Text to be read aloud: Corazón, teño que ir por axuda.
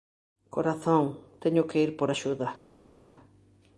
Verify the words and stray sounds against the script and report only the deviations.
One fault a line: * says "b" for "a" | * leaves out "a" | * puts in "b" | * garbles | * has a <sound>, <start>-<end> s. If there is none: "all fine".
all fine